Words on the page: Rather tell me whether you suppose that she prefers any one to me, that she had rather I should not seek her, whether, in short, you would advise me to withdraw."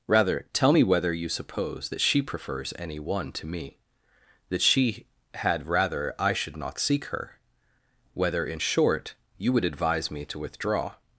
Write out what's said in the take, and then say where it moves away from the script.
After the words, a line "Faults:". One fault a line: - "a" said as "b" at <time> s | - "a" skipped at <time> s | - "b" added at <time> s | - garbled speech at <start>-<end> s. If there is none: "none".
Rather tell me whether you suppose that she prefers any one to me, that she had rather I should not seek her, whether, in short, you would advise me to withdraw."
Faults:
none